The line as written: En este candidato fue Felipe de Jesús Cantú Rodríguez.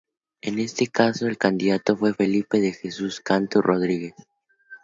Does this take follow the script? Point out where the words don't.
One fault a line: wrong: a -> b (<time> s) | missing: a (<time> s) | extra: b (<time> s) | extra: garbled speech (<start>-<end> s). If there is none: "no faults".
extra: caso el (0.9 s)